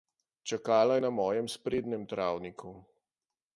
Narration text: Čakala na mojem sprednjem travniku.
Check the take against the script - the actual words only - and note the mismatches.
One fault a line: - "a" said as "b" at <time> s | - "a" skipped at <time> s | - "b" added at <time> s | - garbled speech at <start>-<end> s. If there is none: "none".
none